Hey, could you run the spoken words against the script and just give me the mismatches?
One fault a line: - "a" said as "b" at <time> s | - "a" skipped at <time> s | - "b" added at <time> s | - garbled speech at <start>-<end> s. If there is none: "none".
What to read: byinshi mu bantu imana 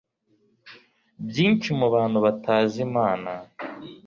- "batazi" added at 2.2 s